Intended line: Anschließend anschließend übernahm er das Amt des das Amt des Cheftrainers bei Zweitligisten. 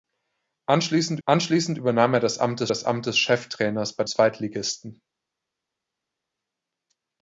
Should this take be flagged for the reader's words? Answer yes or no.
no